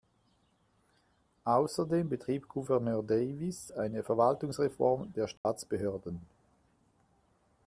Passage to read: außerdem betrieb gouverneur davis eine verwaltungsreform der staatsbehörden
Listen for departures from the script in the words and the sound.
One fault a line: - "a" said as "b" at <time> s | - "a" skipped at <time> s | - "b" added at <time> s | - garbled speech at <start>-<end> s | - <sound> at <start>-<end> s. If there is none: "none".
- dropout at 5.4-5.5 s